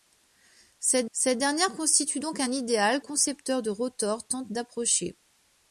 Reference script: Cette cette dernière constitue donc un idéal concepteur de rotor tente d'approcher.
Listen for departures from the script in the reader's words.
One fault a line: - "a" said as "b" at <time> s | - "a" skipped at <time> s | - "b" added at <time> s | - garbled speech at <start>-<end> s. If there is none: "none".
none